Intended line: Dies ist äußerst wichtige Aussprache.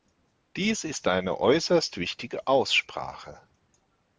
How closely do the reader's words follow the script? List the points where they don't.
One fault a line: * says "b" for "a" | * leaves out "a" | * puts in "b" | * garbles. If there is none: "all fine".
* puts in "eine"